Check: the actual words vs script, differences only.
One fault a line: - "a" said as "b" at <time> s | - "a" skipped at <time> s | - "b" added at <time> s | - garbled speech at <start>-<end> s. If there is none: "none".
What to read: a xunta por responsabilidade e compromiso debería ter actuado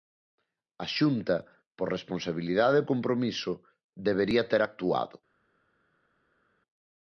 none